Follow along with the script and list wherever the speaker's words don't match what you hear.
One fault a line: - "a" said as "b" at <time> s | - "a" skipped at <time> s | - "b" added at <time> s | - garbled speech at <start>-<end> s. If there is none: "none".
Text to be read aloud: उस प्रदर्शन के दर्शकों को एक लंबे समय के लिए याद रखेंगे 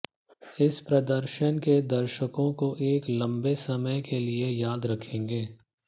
- "उस" said as "इस" at 0.6 s